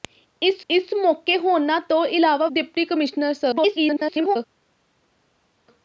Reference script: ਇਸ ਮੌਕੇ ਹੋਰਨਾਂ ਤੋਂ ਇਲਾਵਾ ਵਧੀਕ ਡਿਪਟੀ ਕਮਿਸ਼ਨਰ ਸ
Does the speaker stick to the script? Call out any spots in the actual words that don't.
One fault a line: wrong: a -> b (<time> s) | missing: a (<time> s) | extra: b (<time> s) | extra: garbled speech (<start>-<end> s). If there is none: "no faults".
extra: ਇਸ (0.7 s)
missing: ਵਧੀਕ (2.5 s)
extra: garbled speech (3.5-4.4 s)